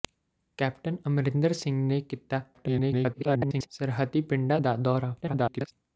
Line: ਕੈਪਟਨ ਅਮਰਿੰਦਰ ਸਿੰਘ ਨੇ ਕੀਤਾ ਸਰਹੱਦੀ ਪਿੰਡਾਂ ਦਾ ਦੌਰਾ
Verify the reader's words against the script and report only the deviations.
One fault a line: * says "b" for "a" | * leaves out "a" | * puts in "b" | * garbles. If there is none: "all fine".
* garbles
* garbles